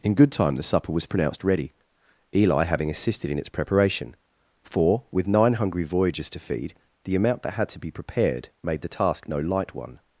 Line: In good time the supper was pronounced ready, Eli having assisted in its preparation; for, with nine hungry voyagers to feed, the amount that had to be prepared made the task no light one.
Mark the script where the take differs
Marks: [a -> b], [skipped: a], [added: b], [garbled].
In good time the supper was pronounced ready, Eli having assisted in its preparation; for, with nine hungry voyagers to feed, the amount that had to be prepared made the task no light one.